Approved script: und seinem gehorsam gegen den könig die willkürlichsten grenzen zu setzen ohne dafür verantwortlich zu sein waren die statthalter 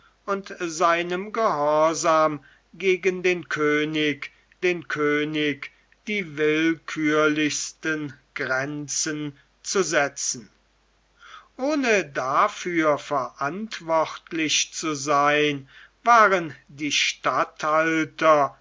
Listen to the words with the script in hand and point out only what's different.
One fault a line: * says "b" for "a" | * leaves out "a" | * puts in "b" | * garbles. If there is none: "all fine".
* puts in "den könig"